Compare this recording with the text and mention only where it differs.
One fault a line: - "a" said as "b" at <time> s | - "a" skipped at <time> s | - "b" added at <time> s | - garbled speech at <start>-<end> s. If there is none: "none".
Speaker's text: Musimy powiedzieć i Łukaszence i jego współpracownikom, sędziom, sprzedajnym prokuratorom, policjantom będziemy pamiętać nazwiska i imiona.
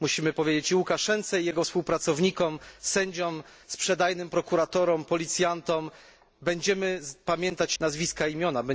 none